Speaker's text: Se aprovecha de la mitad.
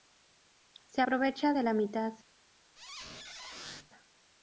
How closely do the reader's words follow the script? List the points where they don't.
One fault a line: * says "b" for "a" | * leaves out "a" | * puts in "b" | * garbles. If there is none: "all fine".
all fine